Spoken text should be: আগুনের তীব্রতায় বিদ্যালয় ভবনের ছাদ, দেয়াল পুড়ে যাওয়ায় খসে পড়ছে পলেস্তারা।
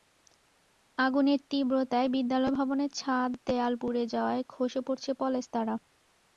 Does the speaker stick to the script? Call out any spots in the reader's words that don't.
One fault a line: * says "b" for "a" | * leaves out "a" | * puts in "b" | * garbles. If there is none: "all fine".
all fine